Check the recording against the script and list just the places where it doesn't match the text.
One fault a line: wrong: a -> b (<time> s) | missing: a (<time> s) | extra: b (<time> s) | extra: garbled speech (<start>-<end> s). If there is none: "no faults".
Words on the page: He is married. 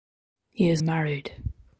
no faults